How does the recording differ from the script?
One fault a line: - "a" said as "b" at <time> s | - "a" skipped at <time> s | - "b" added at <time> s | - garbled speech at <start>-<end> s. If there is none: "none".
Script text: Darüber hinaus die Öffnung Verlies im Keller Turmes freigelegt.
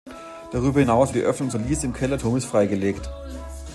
none